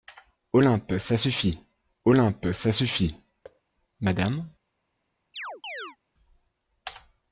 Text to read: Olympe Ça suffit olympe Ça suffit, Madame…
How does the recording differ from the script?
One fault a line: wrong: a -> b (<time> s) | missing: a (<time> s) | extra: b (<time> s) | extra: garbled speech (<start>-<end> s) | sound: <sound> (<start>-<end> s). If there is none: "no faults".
sound: thud (3.4-3.6 s)
sound: chirp (5.3-6.0 s)